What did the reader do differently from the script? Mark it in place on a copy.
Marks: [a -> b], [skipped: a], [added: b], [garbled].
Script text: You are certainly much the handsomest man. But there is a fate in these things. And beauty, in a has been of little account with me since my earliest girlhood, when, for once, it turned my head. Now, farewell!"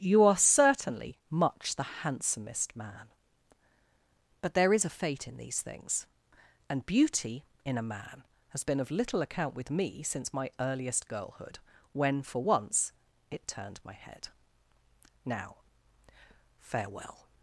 You are certainly much the handsomest man. But there is a fate in these things. And beauty, in a [added: man] has been of little account with me since my earliest girlhood, when, for once, it turned my head. Now, farewell!"